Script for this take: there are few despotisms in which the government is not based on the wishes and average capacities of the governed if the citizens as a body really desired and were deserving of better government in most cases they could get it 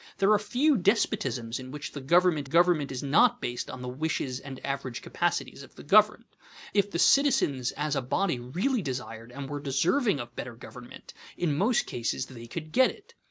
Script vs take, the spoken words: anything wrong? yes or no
yes